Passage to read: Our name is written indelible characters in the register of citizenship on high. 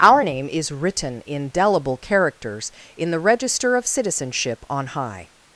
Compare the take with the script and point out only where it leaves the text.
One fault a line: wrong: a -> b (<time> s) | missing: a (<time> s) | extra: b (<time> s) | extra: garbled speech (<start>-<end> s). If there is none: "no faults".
no faults